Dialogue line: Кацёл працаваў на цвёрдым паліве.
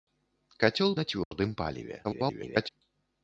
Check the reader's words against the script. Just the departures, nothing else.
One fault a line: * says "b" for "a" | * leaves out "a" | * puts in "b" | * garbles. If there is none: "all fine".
* leaves out "працаваў"
* garbles